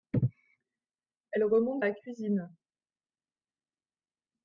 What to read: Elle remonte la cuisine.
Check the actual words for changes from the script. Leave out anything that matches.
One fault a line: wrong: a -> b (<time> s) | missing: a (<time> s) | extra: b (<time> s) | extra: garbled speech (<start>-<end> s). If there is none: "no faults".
no faults